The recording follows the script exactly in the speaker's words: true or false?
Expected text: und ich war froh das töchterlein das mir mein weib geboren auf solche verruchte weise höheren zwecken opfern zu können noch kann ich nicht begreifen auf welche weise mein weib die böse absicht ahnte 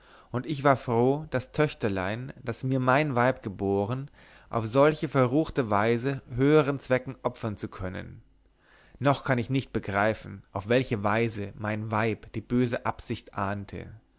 true